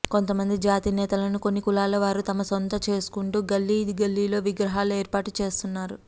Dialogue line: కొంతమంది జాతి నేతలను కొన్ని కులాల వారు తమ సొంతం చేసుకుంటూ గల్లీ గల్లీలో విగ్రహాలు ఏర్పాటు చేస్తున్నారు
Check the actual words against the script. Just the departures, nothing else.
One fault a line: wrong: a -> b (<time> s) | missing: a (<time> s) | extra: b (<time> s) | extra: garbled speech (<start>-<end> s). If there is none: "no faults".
no faults